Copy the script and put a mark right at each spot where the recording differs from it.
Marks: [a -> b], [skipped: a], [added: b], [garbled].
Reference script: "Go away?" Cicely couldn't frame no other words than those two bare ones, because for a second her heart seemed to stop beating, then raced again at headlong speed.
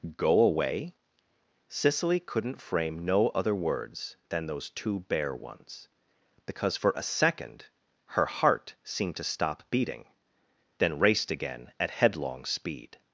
"Go away?" Cicely couldn't frame no other words than those two bare ones, because for a second her heart seemed to stop beating, then raced again at headlong speed.